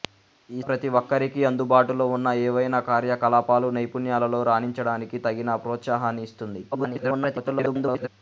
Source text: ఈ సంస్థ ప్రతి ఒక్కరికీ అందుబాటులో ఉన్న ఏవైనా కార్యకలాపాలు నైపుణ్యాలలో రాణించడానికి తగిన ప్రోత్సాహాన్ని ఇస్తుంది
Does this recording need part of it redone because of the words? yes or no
yes